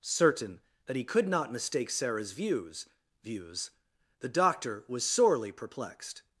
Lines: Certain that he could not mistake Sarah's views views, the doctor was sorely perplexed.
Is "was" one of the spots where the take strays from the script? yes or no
no